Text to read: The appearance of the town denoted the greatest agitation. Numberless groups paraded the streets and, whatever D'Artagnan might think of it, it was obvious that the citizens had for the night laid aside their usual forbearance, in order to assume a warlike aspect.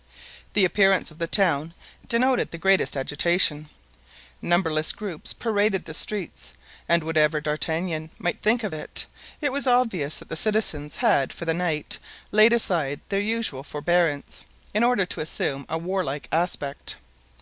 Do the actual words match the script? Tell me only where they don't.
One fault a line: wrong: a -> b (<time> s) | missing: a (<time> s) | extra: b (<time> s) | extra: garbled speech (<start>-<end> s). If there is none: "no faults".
no faults